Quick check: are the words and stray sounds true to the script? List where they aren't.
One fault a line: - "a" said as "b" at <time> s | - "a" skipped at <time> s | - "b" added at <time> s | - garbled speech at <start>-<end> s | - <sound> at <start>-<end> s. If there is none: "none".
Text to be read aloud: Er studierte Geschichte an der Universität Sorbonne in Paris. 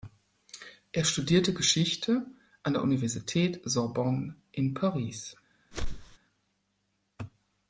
- whoosh at 5.7-6.2 s